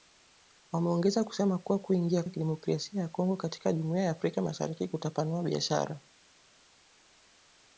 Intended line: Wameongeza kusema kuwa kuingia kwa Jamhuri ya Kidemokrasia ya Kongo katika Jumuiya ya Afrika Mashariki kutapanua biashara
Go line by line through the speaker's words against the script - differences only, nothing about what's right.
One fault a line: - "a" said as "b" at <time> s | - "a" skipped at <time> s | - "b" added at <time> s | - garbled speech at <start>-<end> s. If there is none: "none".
- "kwa Jamhuri" skipped at 2.2 s